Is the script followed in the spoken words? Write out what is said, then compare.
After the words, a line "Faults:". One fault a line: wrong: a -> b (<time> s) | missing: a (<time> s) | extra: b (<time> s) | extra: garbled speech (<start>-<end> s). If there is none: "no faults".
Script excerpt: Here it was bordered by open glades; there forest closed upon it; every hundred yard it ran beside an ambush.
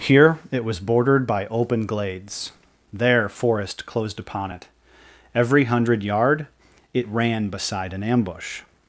Here it was bordered by open glades; there forest closed upon it; every hundred yard it ran beside an ambush.
Faults:
no faults